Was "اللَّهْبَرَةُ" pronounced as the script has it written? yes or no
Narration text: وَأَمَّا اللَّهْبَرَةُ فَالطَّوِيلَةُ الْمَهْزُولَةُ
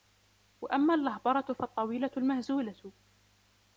yes